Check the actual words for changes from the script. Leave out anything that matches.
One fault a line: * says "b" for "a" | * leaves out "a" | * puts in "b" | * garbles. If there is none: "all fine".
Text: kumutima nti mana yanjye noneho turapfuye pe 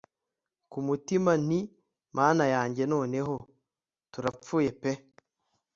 all fine